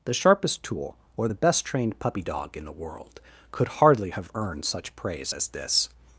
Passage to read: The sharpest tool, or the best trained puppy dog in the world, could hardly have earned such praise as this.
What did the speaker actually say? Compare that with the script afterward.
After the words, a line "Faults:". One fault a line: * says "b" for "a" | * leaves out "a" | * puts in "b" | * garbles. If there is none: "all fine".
The sharpest tool, or the best trained puppy dog in the world, could hardly have earned such praise as this.
Faults:
all fine